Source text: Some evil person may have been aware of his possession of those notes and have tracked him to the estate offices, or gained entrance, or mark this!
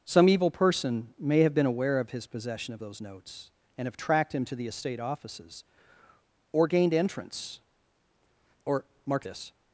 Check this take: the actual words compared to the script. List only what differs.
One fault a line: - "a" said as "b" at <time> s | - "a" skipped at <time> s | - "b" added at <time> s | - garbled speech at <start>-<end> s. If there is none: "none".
none